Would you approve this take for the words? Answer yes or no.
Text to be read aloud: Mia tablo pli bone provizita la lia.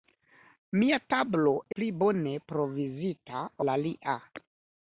yes